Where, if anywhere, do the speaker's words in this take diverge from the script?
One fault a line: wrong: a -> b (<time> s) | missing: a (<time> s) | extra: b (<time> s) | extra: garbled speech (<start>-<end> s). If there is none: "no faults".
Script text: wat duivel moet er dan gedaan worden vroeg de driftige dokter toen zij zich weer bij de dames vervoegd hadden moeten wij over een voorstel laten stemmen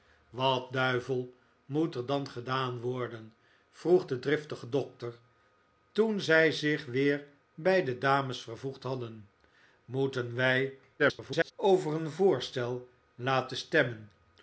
extra: garbled speech (11.0-11.5 s)